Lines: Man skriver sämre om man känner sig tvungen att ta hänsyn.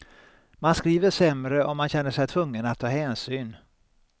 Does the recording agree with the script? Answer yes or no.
yes